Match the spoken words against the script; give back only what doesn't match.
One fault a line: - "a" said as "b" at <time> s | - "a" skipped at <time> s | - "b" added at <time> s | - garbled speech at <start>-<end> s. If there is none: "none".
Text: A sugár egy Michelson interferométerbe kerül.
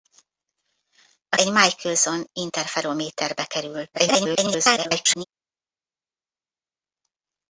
- "sugár" skipped at 1.4 s
- garbled speech at 3.9-5.2 s